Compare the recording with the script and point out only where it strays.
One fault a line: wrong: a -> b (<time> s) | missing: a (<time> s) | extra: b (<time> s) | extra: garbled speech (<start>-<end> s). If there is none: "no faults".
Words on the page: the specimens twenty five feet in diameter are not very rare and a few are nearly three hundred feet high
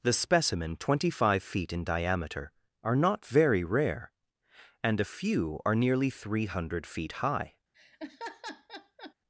wrong: specimens -> specimen (0.1 s)